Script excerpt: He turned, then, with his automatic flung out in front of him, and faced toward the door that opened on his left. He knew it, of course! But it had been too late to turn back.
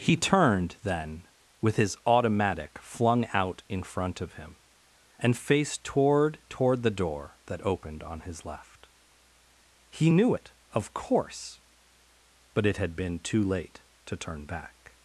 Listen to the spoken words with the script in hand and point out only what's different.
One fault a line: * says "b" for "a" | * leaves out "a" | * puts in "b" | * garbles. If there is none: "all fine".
* puts in "toward"